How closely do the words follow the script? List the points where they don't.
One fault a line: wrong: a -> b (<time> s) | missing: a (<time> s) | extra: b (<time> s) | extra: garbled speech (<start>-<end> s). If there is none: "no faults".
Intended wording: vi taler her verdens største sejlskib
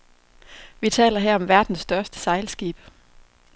extra: om (1.4 s)